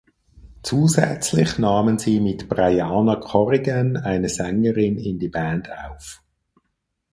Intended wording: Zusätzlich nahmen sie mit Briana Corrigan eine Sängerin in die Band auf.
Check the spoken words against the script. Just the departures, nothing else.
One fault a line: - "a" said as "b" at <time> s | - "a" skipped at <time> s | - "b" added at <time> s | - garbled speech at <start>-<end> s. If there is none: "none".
none